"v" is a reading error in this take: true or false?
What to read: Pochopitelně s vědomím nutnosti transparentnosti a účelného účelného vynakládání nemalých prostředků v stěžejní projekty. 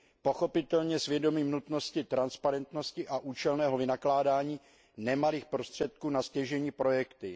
true